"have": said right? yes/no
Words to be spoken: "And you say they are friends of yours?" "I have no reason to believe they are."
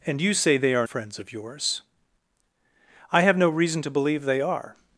yes